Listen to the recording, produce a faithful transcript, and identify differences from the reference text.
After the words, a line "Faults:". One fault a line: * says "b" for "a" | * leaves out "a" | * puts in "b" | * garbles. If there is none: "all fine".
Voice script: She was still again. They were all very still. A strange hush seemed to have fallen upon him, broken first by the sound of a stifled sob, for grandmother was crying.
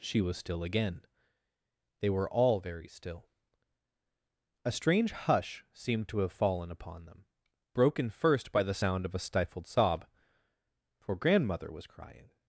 She was still again. They were all very still. A strange hush seemed to have fallen upon them, broken first by the sound of a stifled sob, for grandmother was crying.
Faults:
* says "them" for "him"